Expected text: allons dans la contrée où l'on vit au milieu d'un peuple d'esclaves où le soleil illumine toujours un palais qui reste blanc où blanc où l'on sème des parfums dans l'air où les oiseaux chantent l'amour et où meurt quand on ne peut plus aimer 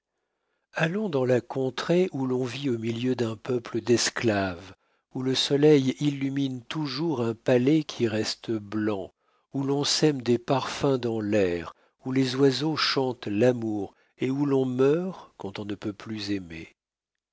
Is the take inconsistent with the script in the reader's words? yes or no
yes